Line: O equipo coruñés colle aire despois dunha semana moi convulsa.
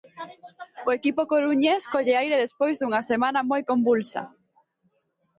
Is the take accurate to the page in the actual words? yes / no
yes